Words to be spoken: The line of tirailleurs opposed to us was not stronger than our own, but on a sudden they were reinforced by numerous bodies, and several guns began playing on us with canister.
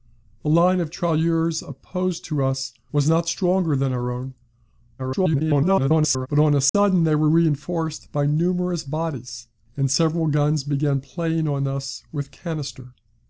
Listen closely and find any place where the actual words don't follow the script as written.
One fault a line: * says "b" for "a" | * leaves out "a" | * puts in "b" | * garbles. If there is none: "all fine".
* garbles